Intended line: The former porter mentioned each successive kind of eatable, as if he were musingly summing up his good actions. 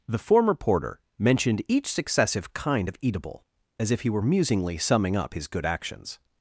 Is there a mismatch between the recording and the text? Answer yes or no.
no